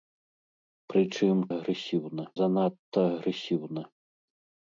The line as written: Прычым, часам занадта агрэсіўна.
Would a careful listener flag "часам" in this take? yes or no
yes